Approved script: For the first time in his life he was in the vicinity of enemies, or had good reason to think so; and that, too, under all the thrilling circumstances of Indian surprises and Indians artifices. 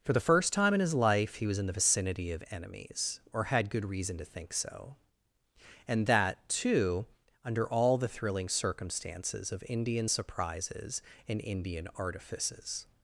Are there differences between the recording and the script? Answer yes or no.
yes